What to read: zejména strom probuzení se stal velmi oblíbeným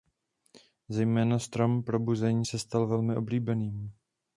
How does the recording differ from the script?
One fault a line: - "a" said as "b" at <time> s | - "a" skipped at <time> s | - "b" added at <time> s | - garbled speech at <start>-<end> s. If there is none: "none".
none